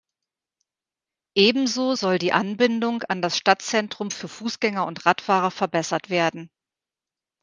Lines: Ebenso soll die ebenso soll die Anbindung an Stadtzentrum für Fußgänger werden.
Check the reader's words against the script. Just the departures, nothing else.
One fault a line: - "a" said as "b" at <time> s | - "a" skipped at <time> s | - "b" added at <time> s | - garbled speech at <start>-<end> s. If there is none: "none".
- "ebenso soll die" skipped at 2.3 s
- "das" added at 3.2 s
- "und Radfahrer verbessert" added at 4.8 s